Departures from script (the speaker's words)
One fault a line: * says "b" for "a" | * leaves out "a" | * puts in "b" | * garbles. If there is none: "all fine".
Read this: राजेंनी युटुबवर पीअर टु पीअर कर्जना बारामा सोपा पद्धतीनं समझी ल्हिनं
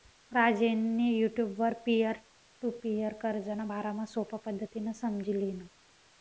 all fine